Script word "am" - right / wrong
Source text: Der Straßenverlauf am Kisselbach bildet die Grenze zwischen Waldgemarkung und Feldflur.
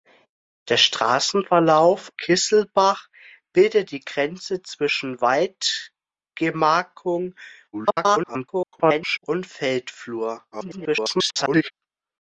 wrong